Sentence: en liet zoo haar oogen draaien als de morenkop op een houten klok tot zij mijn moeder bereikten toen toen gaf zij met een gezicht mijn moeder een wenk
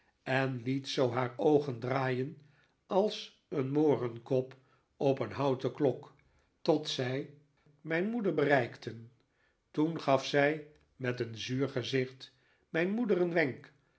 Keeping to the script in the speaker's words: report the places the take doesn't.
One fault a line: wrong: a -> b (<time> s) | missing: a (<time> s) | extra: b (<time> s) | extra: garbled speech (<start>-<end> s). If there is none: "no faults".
wrong: de -> een (3.5 s)
missing: toen (10.0 s)
extra: zuur (11.4 s)